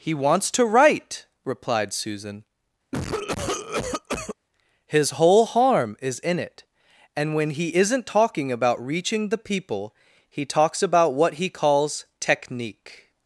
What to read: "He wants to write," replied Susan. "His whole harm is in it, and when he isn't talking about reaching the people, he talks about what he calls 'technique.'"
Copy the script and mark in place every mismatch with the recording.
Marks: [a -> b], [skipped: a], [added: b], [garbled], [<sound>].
"He wants to write," replied Susan. [cough] "His whole harm is in it, and when he isn't talking about reaching the people, he talks about what he calls 'technique.'"